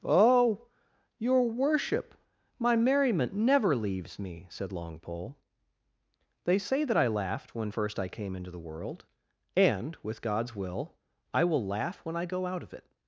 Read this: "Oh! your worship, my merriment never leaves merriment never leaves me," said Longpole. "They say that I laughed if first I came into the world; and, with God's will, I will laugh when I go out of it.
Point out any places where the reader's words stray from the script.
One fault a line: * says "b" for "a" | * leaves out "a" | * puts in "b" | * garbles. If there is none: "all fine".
* leaves out "merriment never leaves"
* says "when" for "if"